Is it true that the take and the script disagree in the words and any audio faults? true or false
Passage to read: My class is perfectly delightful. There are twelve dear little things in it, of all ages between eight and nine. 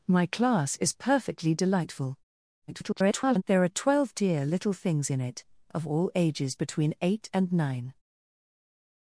true